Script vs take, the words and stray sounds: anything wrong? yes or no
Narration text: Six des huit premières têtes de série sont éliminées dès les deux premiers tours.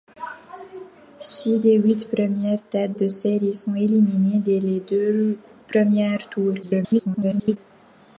yes